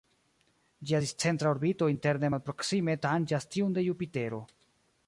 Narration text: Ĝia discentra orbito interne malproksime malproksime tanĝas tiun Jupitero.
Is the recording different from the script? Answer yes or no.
yes